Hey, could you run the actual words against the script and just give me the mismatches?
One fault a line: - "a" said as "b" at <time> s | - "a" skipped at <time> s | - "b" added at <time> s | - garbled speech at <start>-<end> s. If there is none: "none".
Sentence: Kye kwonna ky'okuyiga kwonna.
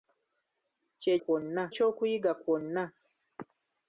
none